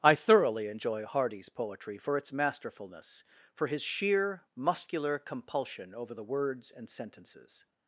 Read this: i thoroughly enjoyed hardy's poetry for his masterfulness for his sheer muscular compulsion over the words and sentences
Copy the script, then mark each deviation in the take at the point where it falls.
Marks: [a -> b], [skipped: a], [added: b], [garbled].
i thoroughly [enjoyed -> enjoy] hardy's poetry for [his -> its] masterfulness for his sheer muscular compulsion over the words and sentences